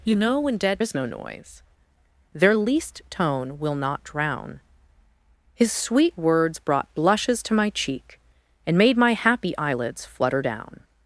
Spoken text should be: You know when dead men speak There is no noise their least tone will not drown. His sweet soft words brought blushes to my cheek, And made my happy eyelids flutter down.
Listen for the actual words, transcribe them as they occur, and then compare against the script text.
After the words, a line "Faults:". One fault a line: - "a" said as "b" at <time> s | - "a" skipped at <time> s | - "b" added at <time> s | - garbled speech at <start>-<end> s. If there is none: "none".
You know when dead is no noise their least tone will not drown. His sweet words brought blushes to my cheek, And made my happy eyelids flutter down.
Faults:
- "men speak There" skipped at 0.8 s
- "soft" skipped at 6.2 s